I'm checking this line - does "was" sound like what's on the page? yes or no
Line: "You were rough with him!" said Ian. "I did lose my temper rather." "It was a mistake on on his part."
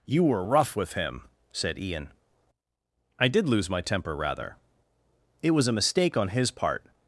yes